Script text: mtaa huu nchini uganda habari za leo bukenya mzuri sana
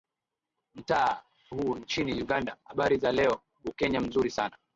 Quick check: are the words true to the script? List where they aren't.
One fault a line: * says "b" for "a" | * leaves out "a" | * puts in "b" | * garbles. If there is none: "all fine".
all fine